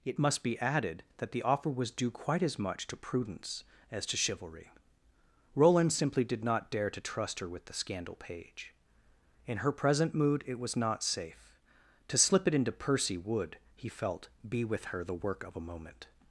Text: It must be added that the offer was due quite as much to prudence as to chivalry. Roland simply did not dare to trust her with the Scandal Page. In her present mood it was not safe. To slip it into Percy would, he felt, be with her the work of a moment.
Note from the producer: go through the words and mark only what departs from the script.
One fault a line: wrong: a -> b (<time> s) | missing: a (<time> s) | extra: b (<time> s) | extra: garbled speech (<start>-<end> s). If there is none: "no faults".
no faults